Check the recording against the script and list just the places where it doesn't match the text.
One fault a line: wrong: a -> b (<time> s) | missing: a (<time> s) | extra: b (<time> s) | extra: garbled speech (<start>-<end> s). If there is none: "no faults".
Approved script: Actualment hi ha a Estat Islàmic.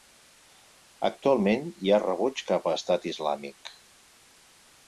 extra: rebuig cap (2.0 s)